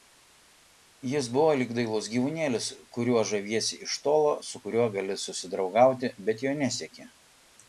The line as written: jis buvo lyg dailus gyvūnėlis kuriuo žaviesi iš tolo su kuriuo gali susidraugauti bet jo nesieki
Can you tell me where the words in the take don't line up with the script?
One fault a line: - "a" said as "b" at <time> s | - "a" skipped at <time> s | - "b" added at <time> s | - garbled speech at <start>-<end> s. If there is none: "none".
none